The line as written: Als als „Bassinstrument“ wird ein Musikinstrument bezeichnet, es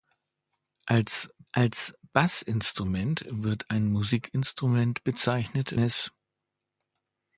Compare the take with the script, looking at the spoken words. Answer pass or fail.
pass